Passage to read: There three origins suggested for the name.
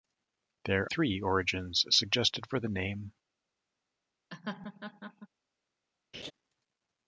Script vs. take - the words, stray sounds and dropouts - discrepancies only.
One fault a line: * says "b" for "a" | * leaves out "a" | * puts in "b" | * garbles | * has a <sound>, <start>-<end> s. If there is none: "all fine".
* has a laugh, 4.3-5.3 s
* has a laugh, 6.1-6.3 s